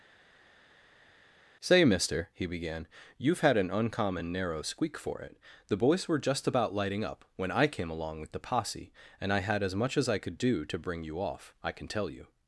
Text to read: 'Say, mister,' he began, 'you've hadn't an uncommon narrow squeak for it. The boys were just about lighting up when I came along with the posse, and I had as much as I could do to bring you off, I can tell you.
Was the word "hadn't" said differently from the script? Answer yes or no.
yes